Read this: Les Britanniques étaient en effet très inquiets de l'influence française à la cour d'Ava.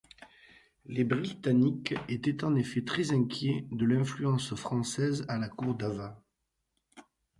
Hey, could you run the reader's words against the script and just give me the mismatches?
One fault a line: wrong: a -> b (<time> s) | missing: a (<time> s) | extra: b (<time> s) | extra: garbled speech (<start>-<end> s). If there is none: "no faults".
no faults